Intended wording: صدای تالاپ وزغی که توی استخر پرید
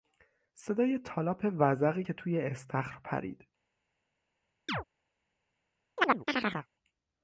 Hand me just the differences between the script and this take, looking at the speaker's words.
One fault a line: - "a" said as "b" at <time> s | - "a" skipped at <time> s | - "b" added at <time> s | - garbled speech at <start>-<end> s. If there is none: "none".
none